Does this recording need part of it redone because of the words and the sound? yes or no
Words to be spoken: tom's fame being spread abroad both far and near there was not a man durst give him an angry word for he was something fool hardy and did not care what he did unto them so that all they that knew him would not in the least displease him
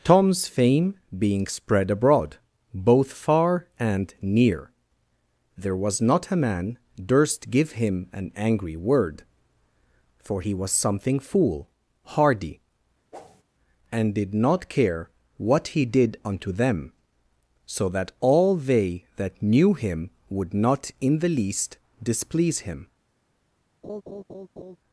yes